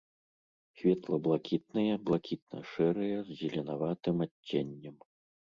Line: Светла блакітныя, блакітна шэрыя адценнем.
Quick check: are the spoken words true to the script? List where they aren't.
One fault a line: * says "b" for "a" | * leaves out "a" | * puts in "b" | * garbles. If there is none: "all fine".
* puts in "з зеленаватым"